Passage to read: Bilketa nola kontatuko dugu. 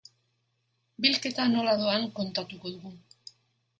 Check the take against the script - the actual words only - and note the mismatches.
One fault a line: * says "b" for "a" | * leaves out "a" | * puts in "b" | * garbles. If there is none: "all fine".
* puts in "doan"